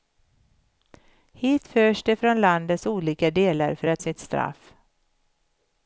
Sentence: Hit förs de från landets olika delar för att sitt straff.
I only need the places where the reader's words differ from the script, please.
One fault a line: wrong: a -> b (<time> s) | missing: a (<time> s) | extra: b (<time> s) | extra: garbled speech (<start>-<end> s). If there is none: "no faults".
no faults